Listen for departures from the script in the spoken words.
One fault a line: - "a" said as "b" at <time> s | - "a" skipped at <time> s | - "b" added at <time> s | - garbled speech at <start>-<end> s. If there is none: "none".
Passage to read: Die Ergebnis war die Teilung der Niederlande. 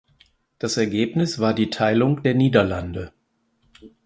- "Die" said as "Das" at 0.6 s